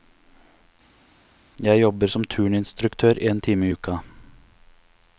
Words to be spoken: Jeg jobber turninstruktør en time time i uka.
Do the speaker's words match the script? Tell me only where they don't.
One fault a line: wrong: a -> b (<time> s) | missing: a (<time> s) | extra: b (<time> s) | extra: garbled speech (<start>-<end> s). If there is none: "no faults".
extra: som (2.1 s)
missing: time (3.7 s)